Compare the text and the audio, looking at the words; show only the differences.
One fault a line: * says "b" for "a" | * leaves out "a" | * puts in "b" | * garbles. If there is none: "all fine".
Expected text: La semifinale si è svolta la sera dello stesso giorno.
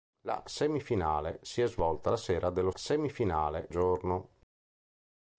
* says "semifinale" for "stesso"